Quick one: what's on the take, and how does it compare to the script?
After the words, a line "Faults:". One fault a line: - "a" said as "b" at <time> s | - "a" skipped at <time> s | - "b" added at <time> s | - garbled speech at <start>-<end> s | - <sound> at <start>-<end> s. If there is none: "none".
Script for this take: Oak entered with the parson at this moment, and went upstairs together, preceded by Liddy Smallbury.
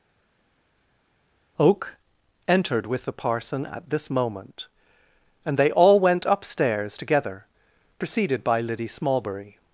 Oak entered with the parson at this moment, and they all went upstairs together, preceded by Liddy Smallbury.
Faults:
- "they all" added at 5.6 s